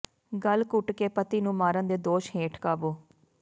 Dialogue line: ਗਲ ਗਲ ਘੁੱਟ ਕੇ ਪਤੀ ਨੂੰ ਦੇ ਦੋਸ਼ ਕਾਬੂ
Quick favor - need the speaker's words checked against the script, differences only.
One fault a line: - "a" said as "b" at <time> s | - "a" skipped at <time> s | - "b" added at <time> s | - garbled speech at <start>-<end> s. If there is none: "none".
- "ਗਲ" skipped at 0.6 s
- "ਮਾਰਨ" added at 1.6 s
- "ਹੇਠ" added at 2.3 s